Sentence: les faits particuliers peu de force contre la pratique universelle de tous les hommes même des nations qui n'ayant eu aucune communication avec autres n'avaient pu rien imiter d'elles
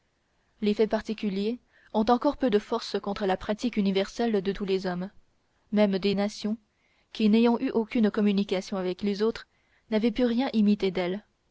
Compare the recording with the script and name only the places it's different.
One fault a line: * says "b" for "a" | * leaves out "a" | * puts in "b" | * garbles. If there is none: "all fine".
* puts in "ont encore"
* puts in "les"